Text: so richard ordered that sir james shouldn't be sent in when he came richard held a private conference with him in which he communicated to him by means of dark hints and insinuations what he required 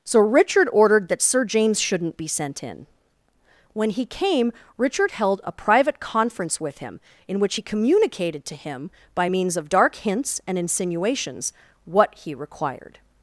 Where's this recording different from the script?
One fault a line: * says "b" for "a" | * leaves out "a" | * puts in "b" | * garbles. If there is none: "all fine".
all fine